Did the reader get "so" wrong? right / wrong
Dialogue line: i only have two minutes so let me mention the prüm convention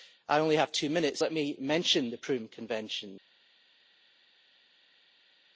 wrong